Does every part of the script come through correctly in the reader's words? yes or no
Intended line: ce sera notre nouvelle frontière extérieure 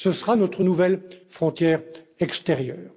yes